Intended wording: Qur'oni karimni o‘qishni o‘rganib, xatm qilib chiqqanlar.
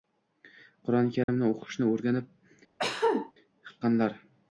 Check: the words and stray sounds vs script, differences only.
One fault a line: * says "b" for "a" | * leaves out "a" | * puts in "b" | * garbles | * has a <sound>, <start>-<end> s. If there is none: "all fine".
* has a dropout, 1.2-1.3 s
* leaves out "xatm qilib"
* has a cough, 2.8-3.3 s